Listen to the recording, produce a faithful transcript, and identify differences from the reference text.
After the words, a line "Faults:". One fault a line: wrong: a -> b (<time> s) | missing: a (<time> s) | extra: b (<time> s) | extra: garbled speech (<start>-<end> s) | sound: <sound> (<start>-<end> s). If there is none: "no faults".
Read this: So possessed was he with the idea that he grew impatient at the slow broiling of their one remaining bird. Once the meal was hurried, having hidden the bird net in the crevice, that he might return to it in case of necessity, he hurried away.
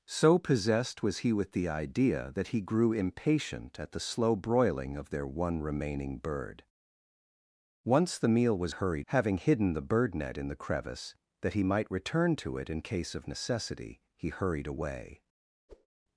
So possessed was he with the idea that he grew impatient at the slow broiling of their one remaining bird. Once the meal was hurried, having hidden the bird net in the crevice, that he might return to it in case of necessity, he hurried away.
Faults:
sound: whoosh (15.7-15.9 s)